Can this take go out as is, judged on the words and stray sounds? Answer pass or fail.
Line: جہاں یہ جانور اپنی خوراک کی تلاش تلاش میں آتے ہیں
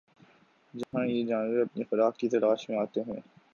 fail